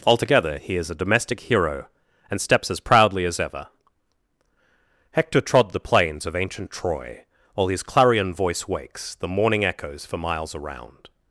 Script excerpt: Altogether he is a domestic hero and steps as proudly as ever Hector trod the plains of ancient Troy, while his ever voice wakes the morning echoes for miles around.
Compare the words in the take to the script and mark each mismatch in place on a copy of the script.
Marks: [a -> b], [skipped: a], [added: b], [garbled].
Altogether he is a domestic hero and steps as proudly as ever Hector trod the plains of ancient Troy, while his [ever -> clarion] voice wakes the morning echoes for miles around.